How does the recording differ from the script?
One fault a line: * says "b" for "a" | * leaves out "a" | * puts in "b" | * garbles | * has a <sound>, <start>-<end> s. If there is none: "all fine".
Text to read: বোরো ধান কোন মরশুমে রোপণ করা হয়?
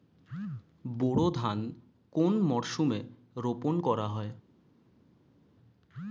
all fine